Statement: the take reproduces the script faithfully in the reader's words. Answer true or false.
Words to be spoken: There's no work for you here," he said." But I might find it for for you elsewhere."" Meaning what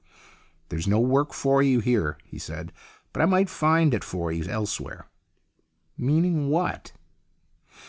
false